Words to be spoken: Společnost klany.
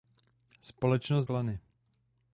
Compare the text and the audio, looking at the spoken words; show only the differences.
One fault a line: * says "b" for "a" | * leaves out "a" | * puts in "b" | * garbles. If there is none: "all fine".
all fine